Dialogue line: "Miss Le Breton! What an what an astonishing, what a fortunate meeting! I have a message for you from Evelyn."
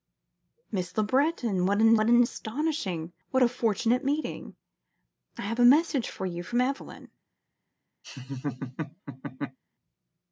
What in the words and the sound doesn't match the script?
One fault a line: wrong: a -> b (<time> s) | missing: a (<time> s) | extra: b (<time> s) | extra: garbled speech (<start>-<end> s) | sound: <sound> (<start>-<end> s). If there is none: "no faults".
sound: laugh (8.0-9.6 s)